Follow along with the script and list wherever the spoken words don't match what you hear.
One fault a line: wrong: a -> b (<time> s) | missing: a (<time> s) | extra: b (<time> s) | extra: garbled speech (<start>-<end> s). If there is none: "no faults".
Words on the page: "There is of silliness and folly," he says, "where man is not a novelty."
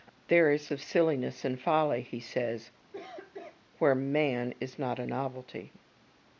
no faults